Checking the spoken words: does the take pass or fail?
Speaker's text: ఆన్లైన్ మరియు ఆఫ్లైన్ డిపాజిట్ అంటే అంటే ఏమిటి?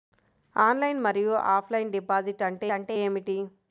pass